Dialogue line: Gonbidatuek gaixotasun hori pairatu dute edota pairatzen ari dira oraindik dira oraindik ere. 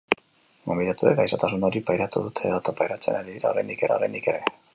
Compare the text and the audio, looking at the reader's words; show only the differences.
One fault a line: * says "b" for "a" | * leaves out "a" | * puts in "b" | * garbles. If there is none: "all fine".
all fine